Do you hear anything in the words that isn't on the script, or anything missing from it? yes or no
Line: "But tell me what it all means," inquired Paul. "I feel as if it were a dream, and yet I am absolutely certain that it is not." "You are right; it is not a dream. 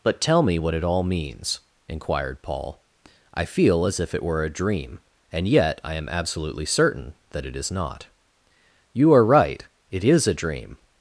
yes